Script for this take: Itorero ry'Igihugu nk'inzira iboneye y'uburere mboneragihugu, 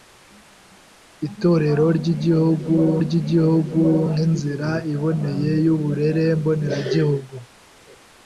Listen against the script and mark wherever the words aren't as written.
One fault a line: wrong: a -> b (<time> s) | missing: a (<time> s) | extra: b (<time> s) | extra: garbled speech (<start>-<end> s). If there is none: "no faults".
extra: ry'Igihugu (3.0 s)